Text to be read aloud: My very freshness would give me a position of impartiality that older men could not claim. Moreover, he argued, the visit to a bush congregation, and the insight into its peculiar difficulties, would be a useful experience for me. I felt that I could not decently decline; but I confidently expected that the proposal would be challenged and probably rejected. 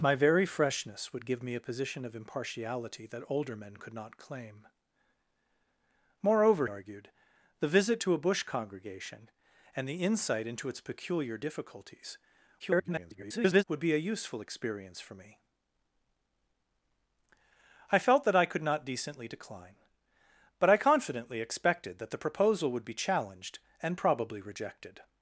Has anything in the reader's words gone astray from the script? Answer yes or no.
yes